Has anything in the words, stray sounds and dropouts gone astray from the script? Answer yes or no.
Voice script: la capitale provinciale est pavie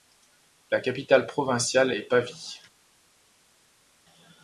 no